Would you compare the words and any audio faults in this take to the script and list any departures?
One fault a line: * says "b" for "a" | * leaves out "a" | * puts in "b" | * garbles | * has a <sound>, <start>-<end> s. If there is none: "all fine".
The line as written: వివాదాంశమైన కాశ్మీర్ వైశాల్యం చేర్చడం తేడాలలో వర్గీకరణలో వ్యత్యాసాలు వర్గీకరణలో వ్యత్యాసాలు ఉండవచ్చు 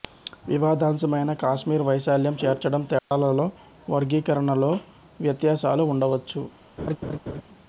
* has a dropout, 3.0-3.1 s
* leaves out "వర్గీకరణలో వ్యత్యాసాలు"
* has a laugh, 6.8-7.4 s